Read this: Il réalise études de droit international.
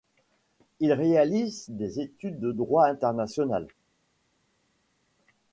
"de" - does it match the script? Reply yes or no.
yes